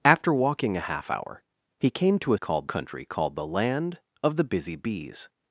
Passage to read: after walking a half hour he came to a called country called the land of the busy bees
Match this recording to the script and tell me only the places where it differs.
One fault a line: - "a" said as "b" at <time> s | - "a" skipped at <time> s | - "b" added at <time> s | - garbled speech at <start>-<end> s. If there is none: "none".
none